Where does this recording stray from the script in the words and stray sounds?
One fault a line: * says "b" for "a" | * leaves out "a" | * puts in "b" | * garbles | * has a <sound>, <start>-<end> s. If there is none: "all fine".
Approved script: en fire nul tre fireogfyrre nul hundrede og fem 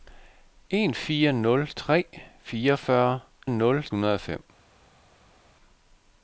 all fine